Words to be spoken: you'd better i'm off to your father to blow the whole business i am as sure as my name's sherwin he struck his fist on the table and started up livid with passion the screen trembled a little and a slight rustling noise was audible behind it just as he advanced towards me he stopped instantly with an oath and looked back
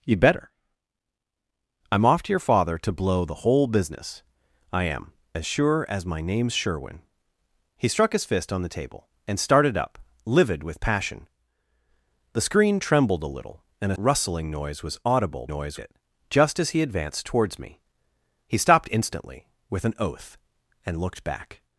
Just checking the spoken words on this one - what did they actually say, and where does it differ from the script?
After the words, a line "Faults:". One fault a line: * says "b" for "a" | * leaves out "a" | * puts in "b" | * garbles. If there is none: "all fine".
you'd better i'm off to your father to blow the whole business i am as sure as my name's sherwin he struck his fist on the table and started up livid with passion the screen trembled a little and a rustling noise was audible noise it just as he advanced towards me he stopped instantly with an oath and looked back
Faults:
* leaves out "slight"
* says "noise" for "behind"